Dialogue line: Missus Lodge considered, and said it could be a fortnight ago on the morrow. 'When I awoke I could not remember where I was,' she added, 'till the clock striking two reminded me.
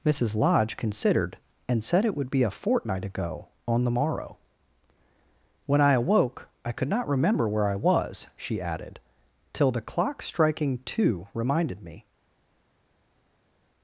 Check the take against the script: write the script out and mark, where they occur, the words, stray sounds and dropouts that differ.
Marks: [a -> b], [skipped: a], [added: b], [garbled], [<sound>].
Missus Lodge considered, and said it [could -> would] be a fortnight ago on the morrow. 'When I awoke I could not remember where I was,' she added, 'till the clock striking two reminded me.